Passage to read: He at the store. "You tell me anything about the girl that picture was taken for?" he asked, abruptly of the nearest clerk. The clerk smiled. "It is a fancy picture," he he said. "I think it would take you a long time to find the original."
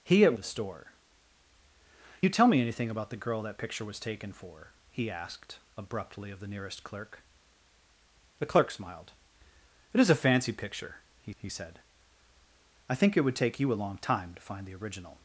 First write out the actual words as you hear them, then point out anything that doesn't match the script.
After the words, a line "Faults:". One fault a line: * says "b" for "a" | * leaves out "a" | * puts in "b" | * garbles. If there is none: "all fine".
He at the store. "You tell me anything about the girl that picture was taken for?" he asked, abruptly of the nearest clerk. The clerk smiled. "It is a fancy picture," he he said. "I think it would take you a long time to find the original."
Faults:
all fine